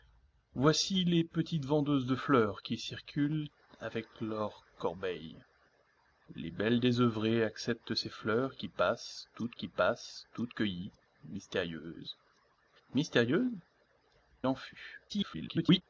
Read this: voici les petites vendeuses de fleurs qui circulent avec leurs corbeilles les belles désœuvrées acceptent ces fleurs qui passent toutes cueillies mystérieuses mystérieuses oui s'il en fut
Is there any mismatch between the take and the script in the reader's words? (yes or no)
yes